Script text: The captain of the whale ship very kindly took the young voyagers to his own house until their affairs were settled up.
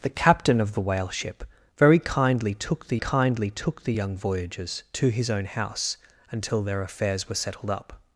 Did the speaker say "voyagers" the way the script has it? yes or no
yes